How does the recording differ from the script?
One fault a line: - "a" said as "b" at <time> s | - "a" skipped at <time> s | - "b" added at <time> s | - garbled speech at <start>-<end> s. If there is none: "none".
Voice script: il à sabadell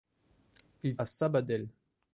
none